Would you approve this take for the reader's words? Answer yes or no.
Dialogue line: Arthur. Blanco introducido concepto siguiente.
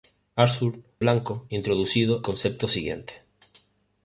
yes